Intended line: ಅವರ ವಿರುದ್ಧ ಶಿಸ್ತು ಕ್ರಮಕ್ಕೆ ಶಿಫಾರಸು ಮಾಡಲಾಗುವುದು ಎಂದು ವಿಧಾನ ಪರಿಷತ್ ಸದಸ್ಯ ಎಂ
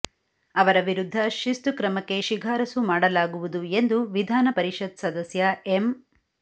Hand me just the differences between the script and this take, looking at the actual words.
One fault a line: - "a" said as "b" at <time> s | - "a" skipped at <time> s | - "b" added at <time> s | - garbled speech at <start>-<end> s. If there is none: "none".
none